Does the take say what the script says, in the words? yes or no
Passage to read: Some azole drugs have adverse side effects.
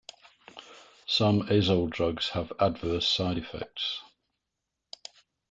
yes